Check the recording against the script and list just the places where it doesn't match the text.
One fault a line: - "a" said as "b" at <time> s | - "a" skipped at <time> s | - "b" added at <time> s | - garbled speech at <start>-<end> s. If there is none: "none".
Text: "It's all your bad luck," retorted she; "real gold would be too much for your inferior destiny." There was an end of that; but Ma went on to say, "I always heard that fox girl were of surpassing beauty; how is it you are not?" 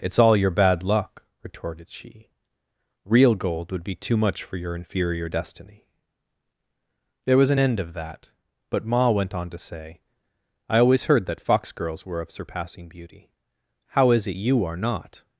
- "girl" said as "girls" at 11.7 s